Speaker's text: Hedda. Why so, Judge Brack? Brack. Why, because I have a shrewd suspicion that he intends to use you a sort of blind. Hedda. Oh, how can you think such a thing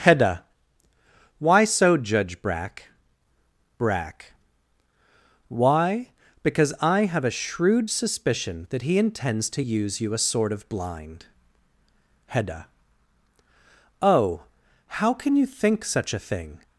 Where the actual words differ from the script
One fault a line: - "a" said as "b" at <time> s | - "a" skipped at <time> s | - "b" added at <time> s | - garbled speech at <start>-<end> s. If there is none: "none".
none